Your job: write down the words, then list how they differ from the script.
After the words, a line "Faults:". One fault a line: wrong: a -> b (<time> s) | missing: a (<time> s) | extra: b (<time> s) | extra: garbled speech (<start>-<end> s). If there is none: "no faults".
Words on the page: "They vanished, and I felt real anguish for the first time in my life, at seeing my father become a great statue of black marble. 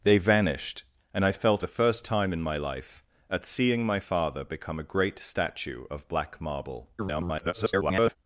"They vanished, and I felt the first time in my life, at seeing my father become a great statue of black marble. [garbled]
Faults:
missing: real anguish for (1.6 s)
extra: garbled speech (7.0-8.2 s)